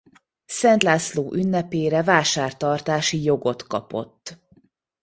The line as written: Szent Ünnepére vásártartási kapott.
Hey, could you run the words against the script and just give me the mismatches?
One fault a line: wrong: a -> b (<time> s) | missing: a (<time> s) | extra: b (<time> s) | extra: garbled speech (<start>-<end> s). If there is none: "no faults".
extra: László (0.8 s)
extra: jogot (3.2 s)